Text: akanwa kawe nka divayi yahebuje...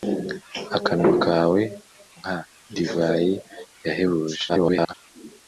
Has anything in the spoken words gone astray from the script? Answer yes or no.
yes